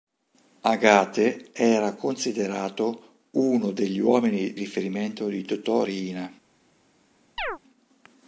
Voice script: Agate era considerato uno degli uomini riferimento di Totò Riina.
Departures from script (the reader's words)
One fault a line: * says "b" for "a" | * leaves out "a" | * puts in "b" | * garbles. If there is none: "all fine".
all fine